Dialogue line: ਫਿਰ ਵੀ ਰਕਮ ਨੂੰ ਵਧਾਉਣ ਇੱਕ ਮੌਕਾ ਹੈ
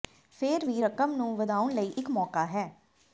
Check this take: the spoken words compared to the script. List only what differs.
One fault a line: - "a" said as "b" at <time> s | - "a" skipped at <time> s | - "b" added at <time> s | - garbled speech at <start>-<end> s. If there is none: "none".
- "ਲਈ" added at 1.7 s